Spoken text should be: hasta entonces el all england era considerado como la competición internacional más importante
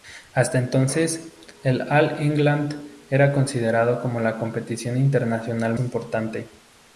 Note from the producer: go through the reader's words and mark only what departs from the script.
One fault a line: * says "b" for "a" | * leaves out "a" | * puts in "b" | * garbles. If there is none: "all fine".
* leaves out "más"